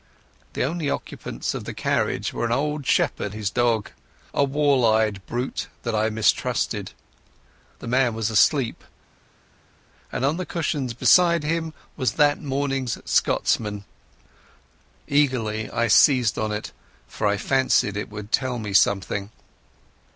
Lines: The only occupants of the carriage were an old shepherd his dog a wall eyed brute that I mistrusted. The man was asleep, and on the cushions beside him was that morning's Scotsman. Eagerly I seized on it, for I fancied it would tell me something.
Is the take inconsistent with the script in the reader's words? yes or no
no